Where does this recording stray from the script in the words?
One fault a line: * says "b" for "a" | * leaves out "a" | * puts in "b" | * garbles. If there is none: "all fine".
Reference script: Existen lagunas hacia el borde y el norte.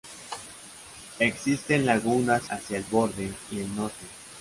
all fine